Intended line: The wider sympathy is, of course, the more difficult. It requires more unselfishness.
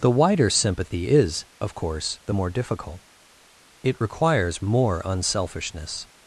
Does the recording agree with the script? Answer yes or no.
yes